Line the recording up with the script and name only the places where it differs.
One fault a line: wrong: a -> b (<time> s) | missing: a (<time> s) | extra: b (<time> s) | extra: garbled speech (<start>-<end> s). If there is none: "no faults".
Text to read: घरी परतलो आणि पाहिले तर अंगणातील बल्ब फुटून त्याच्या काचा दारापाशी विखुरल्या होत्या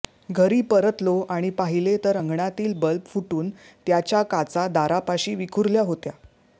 no faults